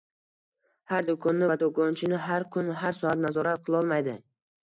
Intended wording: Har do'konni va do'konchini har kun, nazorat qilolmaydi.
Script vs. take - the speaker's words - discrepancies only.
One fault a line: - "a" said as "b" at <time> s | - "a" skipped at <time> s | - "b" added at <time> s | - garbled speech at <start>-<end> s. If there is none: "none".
- "har soat" added at 2.8 s